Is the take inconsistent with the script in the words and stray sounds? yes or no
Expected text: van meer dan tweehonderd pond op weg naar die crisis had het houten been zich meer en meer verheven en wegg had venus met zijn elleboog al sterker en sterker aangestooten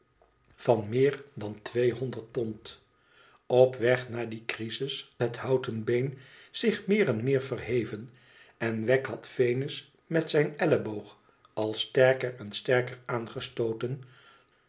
yes